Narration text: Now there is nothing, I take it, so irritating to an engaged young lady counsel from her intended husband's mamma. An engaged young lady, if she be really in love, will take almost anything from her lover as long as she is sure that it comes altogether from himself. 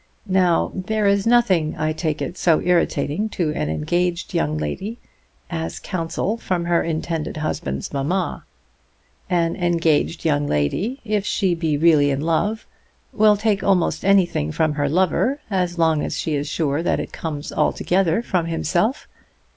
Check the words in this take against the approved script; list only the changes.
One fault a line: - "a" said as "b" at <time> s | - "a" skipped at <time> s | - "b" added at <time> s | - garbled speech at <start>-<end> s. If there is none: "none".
- "as" added at 5.5 s